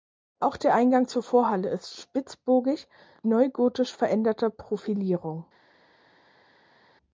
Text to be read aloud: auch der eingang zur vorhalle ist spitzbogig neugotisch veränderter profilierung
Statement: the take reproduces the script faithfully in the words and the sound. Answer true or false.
true